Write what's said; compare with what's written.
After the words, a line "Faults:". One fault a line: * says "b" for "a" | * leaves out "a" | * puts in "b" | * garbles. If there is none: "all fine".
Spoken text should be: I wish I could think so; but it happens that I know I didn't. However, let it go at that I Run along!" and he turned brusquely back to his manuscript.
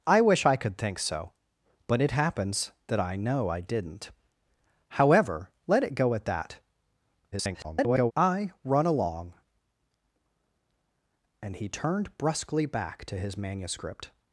I wish I could think so; but it happens that I know I didn't. However, let it go at that [garbled] I Run along!" and he turned brusquely back to his manuscript.
Faults:
* garbles